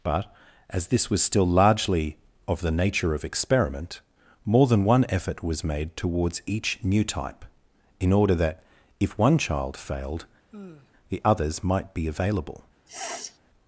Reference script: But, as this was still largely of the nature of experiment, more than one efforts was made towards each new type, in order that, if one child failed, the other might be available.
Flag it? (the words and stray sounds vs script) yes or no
yes